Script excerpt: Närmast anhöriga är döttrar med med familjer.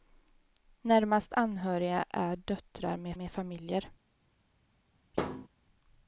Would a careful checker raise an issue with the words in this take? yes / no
no